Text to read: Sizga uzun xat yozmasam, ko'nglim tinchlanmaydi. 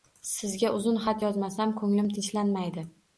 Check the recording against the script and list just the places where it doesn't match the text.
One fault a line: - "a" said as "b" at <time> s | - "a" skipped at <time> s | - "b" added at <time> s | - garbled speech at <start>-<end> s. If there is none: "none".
none